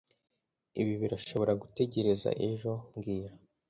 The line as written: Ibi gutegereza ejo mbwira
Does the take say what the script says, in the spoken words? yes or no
no